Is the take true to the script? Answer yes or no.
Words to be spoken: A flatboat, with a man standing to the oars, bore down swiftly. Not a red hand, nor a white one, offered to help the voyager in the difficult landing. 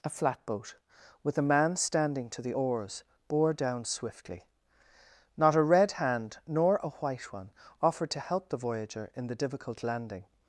yes